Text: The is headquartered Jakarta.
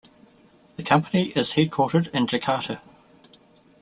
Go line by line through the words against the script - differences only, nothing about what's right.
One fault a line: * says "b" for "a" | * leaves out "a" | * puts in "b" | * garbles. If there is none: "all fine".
* puts in "company"
* puts in "in"